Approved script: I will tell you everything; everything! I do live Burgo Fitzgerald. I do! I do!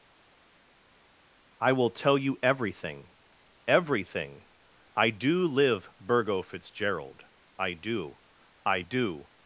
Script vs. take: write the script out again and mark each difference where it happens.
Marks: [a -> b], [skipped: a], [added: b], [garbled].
I will tell you everything; everything! I do live Burgo Fitzgerald. I do! I do!